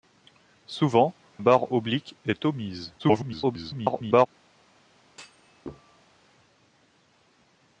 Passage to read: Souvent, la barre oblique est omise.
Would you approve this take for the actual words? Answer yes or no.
no